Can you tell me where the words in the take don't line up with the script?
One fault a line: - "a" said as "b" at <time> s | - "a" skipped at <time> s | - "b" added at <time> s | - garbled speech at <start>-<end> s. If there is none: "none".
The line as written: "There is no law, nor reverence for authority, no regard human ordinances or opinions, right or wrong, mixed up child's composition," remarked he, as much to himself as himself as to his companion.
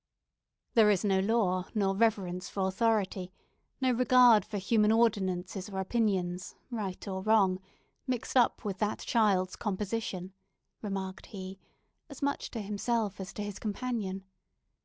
- "for" added at 4.4 s
- "with that" added at 8.6 s
- "himself as" skipped at 13.3 s